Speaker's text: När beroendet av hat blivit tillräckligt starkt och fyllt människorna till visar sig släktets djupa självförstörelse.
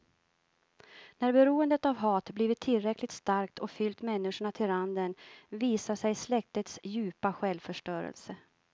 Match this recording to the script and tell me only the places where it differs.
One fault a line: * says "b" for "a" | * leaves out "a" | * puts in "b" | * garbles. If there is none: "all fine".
* puts in "randen"